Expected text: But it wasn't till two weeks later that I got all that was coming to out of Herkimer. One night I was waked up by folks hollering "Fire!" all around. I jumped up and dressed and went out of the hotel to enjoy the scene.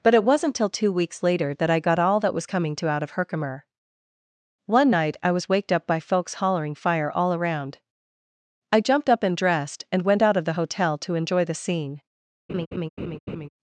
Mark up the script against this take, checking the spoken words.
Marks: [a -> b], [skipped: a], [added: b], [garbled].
But it wasn't till two weeks later that I got all that was coming to out of Herkimer. One night I was waked up by folks hollering "Fire!" all around. I jumped up and dressed and went out of the hotel to enjoy the scene.